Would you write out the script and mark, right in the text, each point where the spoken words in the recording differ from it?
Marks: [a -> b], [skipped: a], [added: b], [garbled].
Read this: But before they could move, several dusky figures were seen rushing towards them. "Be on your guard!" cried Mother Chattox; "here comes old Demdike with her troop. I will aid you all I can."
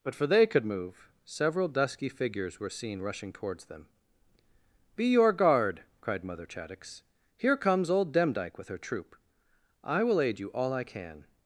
But [before -> for] they could move, several dusky figures were seen rushing towards them. "Be [skipped: on] your guard!" cried Mother Chattox; "here comes old Demdike with her troop. I will aid you all I can."